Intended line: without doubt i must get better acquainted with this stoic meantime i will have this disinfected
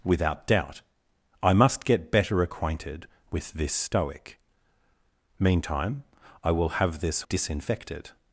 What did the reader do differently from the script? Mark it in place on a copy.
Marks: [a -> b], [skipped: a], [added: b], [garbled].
without doubt i must get better acquainted with this stoic meantime i will have this disinfected